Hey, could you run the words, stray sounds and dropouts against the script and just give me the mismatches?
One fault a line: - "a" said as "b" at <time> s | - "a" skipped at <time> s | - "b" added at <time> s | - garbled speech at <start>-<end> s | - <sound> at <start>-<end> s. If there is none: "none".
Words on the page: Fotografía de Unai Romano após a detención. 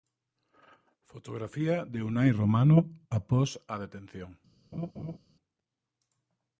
- laugh at 4.7-5.2 s